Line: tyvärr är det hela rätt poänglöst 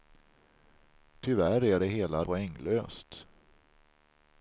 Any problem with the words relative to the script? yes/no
yes